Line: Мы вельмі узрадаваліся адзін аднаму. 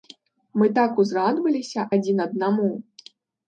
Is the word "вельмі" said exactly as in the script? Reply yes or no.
no